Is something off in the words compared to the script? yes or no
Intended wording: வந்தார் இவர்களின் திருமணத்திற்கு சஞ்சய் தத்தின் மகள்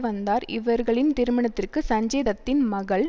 no